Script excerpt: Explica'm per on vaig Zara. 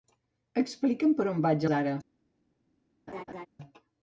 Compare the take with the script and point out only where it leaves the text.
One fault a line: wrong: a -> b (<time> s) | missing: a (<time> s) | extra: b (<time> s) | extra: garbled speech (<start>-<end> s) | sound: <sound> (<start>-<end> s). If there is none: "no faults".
sound: laugh (3.1-3.5 s)